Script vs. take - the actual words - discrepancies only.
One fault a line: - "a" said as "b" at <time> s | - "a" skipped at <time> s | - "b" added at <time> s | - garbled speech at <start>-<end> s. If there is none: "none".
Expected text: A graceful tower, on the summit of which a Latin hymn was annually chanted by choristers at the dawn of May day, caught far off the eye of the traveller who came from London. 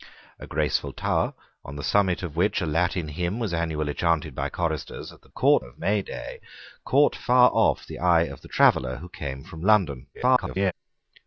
- "dawn" said as "caught" at 5.3 s
- garbled speech at 10.1-10.7 s